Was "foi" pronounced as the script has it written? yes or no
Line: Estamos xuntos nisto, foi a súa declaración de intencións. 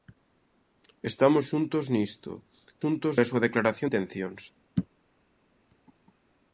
no